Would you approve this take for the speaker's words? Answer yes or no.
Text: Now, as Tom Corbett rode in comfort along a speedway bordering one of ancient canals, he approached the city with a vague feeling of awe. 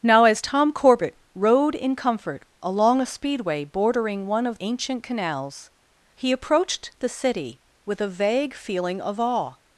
yes